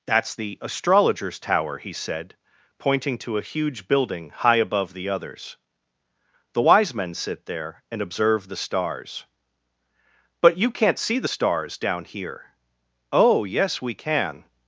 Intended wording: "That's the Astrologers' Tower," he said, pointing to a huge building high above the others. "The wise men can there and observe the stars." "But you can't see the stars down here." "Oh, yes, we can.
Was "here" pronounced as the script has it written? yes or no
yes